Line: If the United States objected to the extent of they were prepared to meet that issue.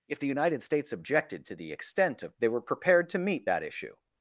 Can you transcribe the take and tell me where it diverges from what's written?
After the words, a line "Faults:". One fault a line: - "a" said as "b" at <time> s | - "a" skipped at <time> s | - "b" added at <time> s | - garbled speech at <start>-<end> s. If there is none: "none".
If the United States objected to the extent of they were prepared to meet that issue.
Faults:
none